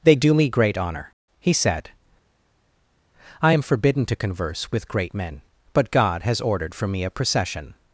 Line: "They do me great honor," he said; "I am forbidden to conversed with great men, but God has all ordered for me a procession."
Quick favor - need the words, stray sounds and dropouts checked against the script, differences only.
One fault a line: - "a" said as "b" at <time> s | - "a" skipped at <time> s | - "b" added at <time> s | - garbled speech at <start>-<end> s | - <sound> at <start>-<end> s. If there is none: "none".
- "conversed" said as "converse" at 4.2 s
- "all" skipped at 6.4 s